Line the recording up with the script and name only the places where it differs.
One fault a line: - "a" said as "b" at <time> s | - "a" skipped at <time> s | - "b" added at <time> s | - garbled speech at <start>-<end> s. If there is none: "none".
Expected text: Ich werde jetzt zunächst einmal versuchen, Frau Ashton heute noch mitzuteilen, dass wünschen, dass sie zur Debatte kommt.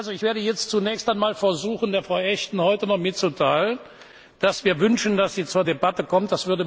- "wir" added at 4.6 s